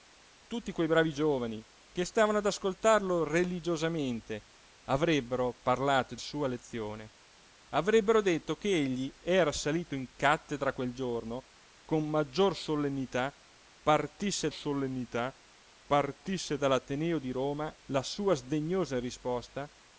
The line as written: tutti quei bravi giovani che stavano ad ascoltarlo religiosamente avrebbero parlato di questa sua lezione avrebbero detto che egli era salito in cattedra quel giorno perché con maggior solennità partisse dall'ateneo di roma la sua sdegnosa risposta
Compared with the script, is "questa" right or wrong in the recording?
wrong